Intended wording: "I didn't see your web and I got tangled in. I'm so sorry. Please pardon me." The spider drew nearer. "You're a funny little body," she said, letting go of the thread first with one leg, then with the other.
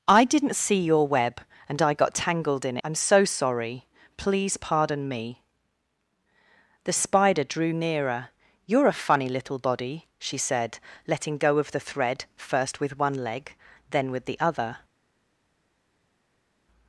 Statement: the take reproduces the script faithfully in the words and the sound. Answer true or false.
true